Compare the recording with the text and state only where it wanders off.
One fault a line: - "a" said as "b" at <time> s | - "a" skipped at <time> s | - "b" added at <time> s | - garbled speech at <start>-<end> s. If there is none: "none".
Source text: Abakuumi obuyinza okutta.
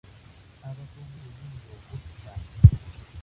none